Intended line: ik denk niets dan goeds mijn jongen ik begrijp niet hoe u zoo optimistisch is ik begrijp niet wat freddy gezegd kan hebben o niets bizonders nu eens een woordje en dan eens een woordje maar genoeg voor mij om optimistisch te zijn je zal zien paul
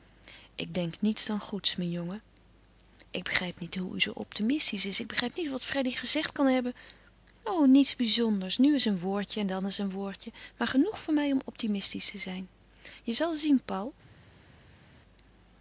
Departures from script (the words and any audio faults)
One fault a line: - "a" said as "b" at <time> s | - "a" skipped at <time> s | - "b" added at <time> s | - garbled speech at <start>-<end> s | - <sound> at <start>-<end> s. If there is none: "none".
none